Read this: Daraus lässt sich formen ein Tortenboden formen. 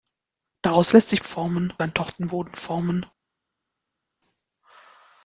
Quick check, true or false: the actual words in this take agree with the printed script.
true